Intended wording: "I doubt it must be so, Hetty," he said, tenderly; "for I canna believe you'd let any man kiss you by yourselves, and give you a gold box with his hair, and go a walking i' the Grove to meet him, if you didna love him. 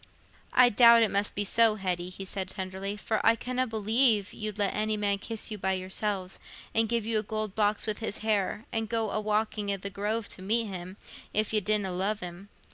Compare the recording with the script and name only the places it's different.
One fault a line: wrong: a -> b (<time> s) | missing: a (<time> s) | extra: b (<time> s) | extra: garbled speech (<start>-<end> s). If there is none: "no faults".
no faults